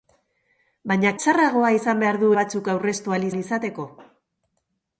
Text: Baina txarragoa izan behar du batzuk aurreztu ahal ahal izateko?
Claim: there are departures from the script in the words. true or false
false